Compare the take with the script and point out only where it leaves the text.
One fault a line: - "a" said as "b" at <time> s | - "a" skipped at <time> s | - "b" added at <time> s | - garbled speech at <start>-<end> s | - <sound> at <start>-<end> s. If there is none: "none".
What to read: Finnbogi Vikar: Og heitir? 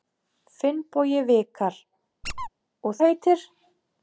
- squeak at 2.2-2.5 s